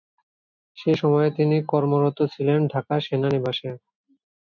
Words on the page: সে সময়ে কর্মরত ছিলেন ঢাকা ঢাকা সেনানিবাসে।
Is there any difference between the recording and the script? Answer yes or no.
yes